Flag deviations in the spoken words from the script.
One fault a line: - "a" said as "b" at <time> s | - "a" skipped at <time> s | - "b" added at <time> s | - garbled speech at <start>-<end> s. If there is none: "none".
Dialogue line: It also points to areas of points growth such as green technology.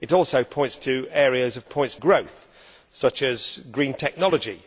none